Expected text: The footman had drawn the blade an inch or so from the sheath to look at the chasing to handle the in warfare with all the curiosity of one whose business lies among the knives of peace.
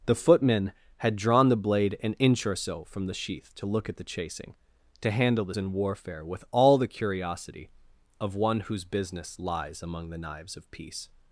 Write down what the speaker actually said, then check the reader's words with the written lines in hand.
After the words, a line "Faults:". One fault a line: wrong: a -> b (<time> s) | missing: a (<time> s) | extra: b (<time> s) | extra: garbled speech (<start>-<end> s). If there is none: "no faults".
The footman had drawn the blade an inch or so from the sheath to look at the chasing to handle the in warfare with all the curiosity of one whose business lies among the knives of peace.
Faults:
no faults